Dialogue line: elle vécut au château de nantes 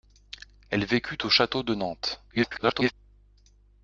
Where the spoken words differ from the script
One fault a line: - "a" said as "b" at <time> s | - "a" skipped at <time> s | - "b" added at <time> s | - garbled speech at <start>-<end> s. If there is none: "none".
- garbled speech at 2.3-2.9 s